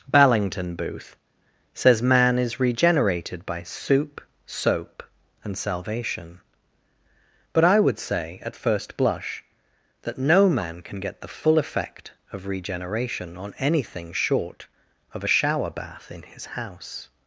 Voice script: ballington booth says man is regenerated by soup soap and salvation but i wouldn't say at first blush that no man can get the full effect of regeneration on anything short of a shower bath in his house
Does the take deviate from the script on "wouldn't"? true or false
true